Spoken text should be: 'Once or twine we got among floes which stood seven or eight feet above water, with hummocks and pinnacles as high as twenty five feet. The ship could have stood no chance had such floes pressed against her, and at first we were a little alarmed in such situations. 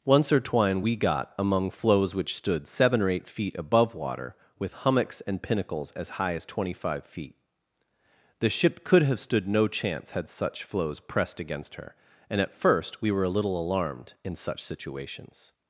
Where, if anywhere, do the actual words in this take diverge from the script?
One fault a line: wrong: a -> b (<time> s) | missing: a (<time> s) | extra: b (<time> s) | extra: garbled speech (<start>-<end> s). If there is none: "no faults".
no faults